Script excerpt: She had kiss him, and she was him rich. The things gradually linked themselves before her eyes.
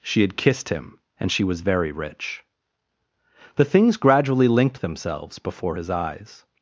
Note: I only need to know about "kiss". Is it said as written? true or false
false